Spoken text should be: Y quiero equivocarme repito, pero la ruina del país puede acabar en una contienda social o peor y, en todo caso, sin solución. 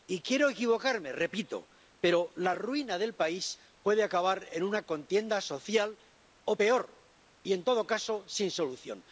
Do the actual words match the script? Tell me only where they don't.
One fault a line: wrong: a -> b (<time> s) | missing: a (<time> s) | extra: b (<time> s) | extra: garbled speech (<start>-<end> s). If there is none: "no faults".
no faults